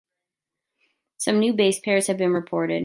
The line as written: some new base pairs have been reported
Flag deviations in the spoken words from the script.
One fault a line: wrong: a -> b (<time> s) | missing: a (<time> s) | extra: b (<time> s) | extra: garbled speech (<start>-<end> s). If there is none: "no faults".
no faults